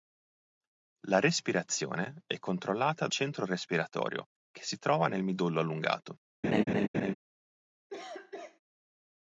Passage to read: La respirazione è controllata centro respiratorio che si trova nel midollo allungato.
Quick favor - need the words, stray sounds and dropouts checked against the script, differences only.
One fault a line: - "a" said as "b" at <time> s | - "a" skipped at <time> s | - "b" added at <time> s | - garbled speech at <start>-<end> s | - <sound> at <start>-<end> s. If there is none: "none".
- laugh at 6.4-7.1 s
- cough at 7.9-8.6 s